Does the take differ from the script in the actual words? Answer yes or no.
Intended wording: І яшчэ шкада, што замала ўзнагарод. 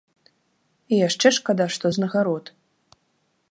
yes